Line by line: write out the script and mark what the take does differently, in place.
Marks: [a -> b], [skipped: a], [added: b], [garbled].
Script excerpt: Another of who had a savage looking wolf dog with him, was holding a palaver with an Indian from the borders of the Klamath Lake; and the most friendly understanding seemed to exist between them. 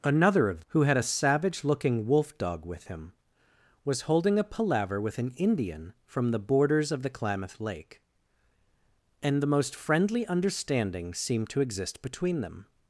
Another of who had a savage looking wolf dog with him, was holding a palaver with an Indian from the borders of the Klamath Lake; and the most friendly understanding seemed to exist between them.